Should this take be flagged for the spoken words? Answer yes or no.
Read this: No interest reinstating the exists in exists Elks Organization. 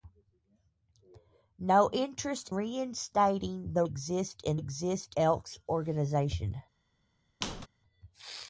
no